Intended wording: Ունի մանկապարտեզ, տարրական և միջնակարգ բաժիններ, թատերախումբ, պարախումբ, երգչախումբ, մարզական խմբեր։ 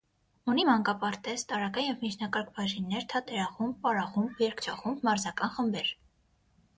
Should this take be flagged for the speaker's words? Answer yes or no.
no